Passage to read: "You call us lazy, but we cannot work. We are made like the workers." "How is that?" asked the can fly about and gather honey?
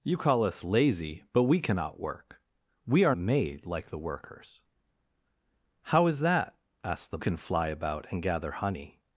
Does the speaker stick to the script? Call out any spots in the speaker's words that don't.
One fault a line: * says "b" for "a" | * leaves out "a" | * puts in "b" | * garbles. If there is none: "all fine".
all fine